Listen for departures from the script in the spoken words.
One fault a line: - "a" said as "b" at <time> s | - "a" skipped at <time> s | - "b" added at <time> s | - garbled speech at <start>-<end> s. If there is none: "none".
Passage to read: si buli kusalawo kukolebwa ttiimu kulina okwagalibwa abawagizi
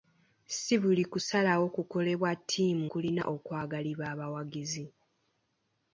none